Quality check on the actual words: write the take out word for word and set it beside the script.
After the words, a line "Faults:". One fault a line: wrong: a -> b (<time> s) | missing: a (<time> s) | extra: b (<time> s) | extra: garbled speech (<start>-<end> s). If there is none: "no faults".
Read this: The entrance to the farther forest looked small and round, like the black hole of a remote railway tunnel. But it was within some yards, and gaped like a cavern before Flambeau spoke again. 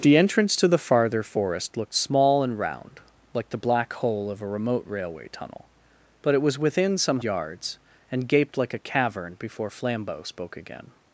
The entrance to the farther forest looked small and round, like the black hole of a remote railway tunnel. But it was within some yards, and gaped like a cavern before Flambeau spoke again.
Faults:
no faults